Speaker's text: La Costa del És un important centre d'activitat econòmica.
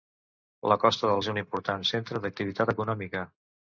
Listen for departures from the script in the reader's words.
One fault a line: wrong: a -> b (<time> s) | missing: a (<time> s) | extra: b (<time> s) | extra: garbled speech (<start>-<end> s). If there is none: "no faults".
no faults